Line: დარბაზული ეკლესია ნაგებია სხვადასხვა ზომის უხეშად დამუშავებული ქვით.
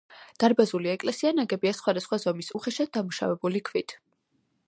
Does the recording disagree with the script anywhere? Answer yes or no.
no